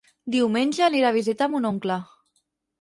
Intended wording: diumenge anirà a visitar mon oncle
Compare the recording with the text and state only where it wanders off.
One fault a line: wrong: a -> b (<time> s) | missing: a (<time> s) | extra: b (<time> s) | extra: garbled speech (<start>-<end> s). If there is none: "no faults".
no faults